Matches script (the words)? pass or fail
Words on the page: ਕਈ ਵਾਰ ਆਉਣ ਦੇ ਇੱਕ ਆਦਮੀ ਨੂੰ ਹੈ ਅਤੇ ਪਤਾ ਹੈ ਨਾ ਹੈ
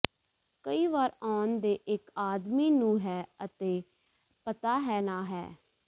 pass